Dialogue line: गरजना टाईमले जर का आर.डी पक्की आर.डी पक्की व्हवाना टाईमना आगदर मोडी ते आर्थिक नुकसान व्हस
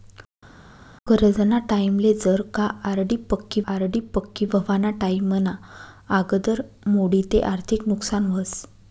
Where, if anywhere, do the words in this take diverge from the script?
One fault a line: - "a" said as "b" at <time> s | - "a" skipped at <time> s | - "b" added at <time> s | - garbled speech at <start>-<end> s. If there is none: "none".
none